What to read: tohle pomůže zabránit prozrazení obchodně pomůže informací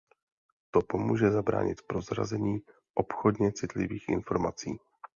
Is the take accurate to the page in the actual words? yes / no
no